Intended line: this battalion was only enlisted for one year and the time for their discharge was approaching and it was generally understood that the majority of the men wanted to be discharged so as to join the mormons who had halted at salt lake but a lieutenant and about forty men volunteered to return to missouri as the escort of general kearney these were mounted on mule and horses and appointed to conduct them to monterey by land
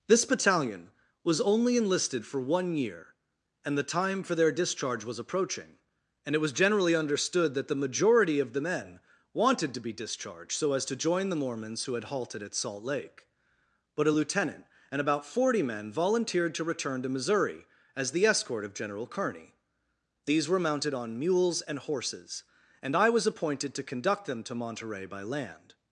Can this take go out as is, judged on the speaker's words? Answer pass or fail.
fail